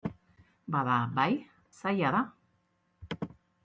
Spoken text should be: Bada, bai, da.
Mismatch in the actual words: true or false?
true